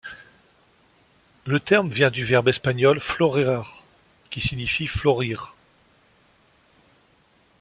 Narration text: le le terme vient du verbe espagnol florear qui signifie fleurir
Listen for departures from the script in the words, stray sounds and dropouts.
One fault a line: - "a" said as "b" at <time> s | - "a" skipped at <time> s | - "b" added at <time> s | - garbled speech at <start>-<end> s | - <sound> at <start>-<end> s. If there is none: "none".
- "le" skipped at 1.6 s